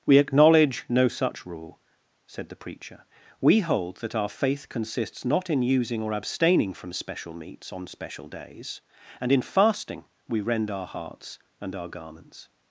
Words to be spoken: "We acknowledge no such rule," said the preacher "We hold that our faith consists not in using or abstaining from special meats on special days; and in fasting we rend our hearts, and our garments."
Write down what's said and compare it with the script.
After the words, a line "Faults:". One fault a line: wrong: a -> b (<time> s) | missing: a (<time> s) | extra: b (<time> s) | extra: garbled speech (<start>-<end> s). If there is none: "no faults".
"We acknowledge no such rule," said the preacher "We hold that our faith consists not in using or abstaining from special meats on special days; and in fasting we rend our hearts, and our garments."
Faults:
no faults